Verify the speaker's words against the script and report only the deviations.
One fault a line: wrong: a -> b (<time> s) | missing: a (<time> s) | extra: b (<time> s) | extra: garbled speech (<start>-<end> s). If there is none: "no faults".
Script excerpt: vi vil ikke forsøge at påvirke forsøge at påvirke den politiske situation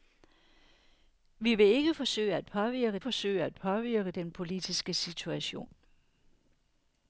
no faults